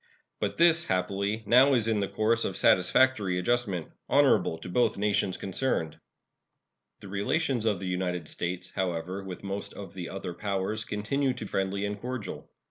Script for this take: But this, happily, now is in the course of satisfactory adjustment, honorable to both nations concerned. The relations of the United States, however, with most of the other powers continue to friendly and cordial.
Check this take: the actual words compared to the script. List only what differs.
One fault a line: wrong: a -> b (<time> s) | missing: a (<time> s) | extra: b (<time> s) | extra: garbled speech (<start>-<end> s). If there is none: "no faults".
no faults